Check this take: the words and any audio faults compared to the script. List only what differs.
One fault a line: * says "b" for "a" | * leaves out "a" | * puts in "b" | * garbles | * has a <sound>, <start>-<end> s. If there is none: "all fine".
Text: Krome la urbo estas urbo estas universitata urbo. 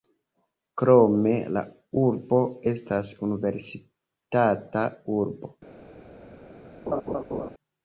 * leaves out "urbo estas"
* has a laugh, 6.9-7.5 s